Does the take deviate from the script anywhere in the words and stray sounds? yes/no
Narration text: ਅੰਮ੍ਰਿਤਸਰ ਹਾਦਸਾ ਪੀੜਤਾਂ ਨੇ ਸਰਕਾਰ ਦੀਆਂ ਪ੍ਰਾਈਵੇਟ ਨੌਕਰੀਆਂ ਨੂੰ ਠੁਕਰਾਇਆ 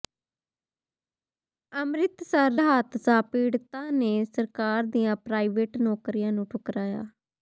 no